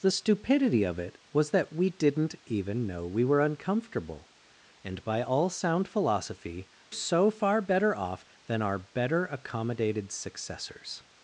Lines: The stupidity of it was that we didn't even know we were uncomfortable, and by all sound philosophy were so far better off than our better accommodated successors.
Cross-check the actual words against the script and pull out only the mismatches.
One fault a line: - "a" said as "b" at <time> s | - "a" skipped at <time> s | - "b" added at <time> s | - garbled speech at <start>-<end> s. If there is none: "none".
- "were" skipped at 6.7 s